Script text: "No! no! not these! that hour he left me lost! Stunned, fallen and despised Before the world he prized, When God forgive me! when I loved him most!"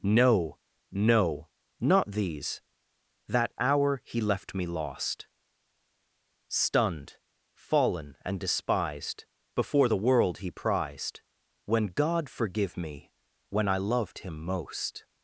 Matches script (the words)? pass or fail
pass